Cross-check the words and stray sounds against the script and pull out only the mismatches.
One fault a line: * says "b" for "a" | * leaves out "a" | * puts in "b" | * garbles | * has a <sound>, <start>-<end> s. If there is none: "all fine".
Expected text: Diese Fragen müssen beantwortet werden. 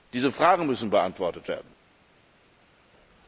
all fine